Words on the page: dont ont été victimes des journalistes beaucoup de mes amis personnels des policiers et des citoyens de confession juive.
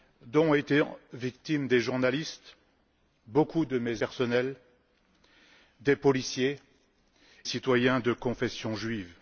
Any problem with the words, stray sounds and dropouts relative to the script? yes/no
yes